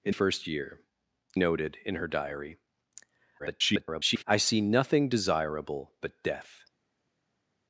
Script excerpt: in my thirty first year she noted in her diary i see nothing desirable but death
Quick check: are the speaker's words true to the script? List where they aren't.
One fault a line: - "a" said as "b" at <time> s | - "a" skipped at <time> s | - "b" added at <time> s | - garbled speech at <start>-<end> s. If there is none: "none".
- "my thirty" skipped at 0.1 s
- "she" skipped at 0.8 s
- garbled speech at 3.4-4.2 s